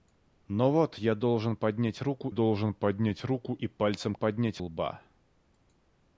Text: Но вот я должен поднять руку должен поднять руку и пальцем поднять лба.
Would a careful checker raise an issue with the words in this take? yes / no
no